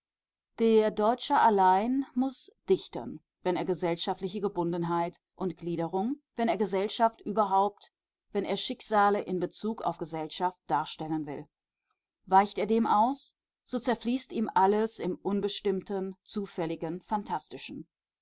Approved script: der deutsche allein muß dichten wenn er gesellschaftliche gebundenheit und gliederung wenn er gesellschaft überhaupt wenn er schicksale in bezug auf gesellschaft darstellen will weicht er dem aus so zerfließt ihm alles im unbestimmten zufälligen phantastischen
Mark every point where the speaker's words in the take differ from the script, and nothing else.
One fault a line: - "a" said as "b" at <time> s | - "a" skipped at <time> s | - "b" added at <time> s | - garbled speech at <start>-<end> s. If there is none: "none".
none